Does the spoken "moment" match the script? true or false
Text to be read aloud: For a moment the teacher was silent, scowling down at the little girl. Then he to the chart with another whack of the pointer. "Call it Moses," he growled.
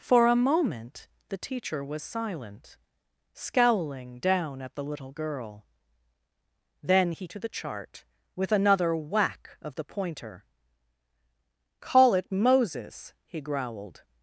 true